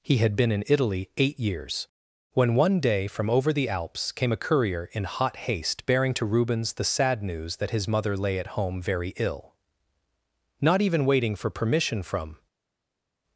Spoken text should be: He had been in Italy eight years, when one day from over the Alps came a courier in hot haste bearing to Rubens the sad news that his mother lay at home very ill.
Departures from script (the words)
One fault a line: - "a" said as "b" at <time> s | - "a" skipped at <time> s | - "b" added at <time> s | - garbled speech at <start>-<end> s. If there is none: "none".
- "Not even waiting for permission from" added at 10.6 s